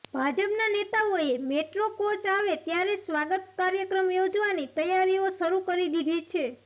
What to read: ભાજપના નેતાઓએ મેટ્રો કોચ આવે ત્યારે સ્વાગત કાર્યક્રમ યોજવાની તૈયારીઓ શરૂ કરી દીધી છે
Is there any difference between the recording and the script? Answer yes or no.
no